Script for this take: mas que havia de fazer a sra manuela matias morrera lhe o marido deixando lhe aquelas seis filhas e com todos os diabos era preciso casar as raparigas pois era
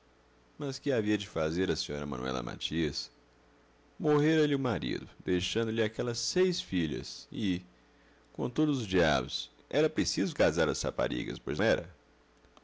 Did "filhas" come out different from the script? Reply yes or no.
no